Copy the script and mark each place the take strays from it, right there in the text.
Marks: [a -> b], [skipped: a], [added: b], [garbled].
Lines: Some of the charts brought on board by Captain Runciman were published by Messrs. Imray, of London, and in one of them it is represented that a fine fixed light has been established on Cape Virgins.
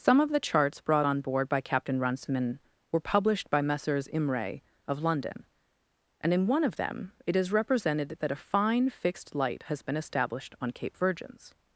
Some of the charts brought on board by Captain Runciman were published by Messrs. Imray, of London, and in one of them it is represented that a fine fixed light has been established on Cape Virgins.